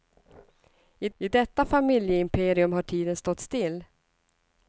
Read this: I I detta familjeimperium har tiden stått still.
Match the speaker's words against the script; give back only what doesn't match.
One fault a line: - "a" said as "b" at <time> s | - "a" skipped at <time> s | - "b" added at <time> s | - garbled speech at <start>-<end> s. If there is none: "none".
none